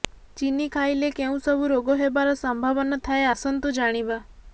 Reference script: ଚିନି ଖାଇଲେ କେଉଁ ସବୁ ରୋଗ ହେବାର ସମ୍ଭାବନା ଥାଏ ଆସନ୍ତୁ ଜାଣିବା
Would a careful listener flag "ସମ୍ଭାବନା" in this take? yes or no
no